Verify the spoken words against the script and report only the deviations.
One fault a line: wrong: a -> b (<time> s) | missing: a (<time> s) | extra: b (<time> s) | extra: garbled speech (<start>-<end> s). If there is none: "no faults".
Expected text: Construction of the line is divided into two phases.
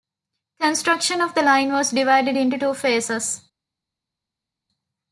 wrong: is -> was (1.7 s)